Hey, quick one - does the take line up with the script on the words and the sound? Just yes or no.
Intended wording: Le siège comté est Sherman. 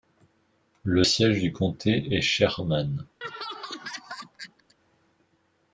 no